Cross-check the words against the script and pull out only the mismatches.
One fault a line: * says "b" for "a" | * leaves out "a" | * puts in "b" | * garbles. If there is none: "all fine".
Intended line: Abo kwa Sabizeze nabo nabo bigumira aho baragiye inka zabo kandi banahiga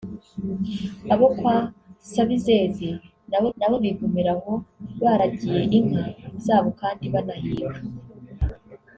all fine